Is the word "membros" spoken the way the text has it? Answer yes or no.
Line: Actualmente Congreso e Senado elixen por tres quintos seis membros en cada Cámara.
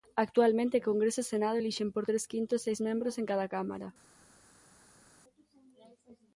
yes